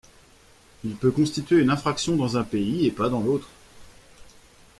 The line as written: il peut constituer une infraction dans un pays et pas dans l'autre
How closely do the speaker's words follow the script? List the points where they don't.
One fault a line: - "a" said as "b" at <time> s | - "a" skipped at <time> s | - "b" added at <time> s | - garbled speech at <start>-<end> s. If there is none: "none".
none